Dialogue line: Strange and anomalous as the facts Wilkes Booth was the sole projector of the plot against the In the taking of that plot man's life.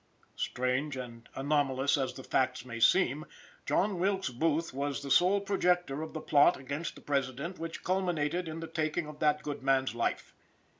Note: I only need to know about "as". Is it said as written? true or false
true